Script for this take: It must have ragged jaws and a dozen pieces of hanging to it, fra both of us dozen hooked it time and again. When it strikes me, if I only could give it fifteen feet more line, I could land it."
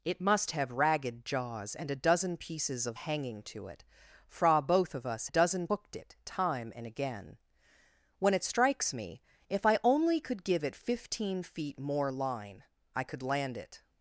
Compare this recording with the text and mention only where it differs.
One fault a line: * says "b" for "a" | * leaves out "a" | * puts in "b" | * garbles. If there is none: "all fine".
all fine